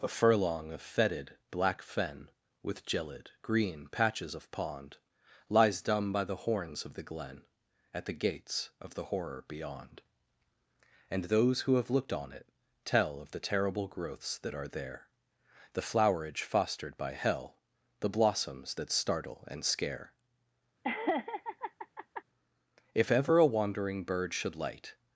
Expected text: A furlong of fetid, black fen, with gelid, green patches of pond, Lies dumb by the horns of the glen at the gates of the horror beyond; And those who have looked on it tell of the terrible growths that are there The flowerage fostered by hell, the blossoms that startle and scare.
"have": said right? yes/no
yes